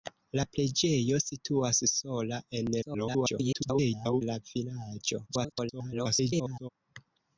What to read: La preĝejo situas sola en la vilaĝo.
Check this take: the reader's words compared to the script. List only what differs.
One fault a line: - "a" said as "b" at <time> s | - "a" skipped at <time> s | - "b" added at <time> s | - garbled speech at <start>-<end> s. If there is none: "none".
- garbled speech at 2.8-4.2 s
- garbled speech at 5.3-6.7 s